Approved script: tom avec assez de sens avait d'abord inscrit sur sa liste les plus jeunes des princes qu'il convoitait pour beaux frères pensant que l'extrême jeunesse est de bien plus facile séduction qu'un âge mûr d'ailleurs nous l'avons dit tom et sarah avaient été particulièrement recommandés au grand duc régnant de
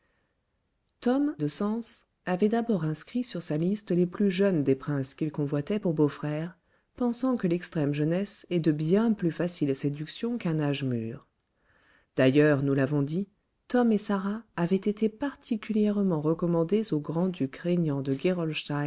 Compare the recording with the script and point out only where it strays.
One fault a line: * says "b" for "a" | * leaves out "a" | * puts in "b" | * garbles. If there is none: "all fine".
* leaves out "avec assez"